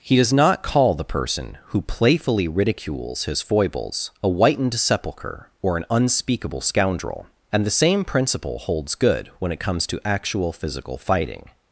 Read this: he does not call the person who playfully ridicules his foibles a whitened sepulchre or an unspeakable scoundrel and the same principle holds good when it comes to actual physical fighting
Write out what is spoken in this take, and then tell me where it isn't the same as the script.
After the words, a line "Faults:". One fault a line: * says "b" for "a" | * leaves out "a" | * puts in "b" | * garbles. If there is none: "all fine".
he does not call the person who playfully ridicules his foibles a whitened sepulchre or an unspeakable scoundrel and the same principle holds good when it comes to actual physical fighting
Faults:
all fine